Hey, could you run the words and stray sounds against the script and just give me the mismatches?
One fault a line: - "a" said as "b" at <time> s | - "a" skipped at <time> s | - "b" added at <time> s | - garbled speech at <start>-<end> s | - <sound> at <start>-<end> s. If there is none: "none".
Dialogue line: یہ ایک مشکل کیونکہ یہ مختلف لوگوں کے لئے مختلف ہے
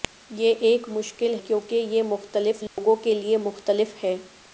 - dropout at 2.7-2.8 s